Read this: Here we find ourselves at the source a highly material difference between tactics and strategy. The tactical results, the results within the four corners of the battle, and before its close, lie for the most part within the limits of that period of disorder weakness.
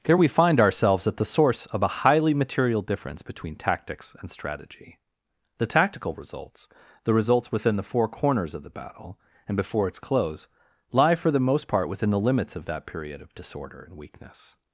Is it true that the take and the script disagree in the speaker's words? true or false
true